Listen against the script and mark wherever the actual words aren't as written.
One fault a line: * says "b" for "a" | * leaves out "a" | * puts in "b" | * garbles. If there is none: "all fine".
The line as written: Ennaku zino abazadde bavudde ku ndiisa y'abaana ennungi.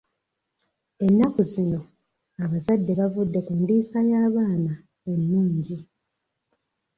all fine